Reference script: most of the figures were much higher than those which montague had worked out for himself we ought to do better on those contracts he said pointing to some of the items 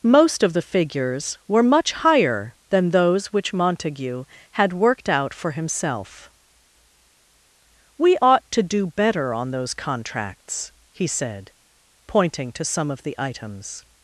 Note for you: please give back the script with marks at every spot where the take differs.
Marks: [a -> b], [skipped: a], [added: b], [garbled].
most of the figures were much higher than those which montague had worked out for himself we ought to do better on those contracts he said pointing to some of the items